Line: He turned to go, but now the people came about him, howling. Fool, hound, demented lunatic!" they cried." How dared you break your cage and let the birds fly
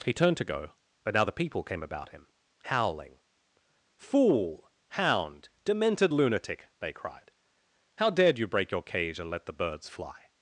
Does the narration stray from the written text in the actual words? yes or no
no